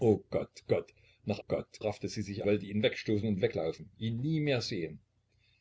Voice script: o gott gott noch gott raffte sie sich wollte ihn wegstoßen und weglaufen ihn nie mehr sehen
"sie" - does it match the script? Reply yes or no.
yes